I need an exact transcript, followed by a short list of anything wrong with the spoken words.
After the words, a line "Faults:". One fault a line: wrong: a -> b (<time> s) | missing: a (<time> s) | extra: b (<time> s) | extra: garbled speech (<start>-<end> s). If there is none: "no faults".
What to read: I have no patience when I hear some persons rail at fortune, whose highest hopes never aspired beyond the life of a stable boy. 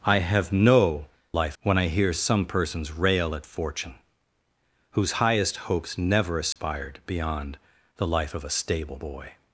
I have no life when I hear some persons rail at fortune, whose highest hopes never aspired beyond the life of a stable boy.
Faults:
wrong: patience -> life (1.3 s)